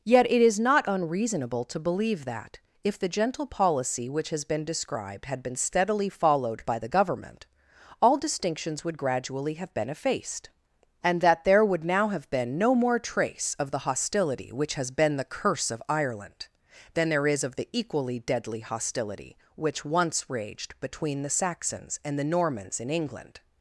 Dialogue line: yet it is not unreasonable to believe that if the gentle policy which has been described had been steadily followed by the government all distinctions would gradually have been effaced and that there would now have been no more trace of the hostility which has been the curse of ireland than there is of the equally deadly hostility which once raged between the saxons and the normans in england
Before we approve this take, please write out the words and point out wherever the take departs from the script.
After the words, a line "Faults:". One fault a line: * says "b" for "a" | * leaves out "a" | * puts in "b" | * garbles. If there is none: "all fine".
yet it is not unreasonable to believe that if the gentle policy which has been described had been steadily followed by the government all distinctions would gradually have been effaced and that there would now have been no more trace of the hostility which has been the curse of ireland than there is of the equally deadly hostility which once raged between the saxons and the normans in england
Faults:
all fine